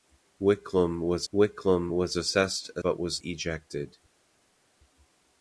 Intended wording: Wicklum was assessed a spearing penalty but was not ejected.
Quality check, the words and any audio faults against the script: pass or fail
fail